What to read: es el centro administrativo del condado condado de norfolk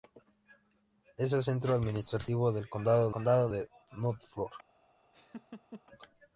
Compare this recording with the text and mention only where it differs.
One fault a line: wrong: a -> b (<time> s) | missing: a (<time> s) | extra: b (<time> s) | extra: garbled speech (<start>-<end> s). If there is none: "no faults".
no faults